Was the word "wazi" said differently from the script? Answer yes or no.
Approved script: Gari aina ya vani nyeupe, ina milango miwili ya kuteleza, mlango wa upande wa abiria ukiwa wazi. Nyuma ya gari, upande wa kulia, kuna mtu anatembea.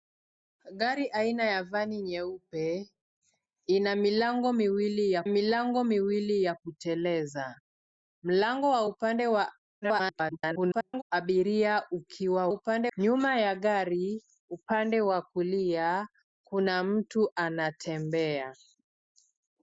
yes